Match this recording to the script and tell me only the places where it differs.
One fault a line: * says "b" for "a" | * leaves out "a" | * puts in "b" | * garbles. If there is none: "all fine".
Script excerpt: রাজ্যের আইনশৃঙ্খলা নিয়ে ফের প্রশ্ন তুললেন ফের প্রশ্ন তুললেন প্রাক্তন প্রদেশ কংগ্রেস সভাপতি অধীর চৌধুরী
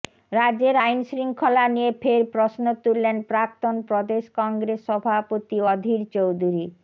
* leaves out "ফের প্রশ্ন তুললেন"